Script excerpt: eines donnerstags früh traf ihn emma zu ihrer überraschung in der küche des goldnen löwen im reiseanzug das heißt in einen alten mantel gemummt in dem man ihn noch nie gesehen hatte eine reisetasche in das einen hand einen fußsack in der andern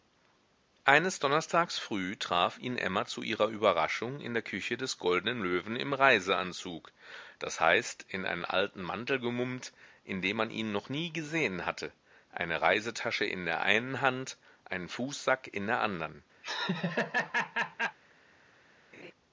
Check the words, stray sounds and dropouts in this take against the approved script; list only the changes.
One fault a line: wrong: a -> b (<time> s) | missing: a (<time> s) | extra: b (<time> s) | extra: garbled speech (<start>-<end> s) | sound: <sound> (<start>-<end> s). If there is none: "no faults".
wrong: das -> der (13.4 s)
sound: laugh (16.4-18.0 s)
sound: laugh (18.9-19.1 s)